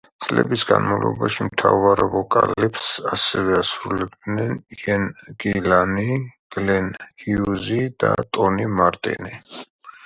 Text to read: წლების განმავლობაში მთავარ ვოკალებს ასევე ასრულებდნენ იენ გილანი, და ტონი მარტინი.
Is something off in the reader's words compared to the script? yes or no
yes